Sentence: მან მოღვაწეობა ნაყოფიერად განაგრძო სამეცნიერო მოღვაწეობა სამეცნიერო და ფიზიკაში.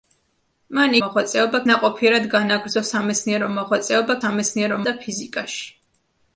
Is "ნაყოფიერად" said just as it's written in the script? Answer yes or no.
yes